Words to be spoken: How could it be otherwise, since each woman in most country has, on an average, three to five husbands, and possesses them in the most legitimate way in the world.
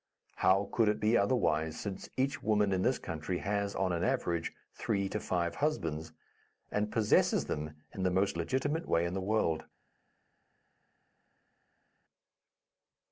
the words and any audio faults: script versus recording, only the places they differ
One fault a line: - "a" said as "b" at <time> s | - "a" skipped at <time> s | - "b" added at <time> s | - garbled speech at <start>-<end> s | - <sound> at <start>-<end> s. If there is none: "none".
- "most" said as "this" at 2.8 s